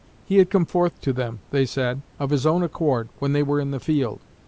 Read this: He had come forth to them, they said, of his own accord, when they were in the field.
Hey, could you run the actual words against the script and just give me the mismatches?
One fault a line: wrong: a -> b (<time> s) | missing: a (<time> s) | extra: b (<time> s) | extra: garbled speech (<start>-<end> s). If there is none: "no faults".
no faults